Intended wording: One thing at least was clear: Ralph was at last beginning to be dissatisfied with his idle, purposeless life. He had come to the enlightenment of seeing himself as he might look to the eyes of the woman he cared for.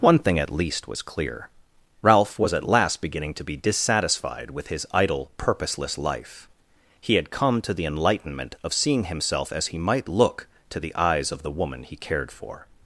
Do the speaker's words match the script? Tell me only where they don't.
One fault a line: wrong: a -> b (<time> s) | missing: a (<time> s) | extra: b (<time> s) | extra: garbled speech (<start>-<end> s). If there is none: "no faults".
no faults